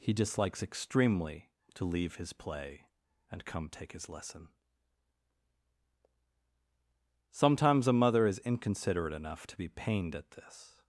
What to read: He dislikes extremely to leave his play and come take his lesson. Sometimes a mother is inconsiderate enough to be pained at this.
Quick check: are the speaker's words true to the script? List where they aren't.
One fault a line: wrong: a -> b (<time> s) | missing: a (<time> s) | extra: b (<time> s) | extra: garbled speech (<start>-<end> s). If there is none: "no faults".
no faults